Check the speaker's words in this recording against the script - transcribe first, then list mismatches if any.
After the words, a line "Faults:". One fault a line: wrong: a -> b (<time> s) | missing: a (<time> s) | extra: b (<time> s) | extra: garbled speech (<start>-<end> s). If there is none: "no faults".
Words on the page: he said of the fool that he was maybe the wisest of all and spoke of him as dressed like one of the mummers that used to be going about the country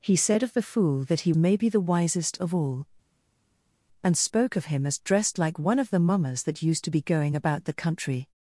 he said of the fool that he maybe the wisest of all and spoke of him as dressed like one of the mummers that used to be going about the country
Faults:
missing: was (1.3 s)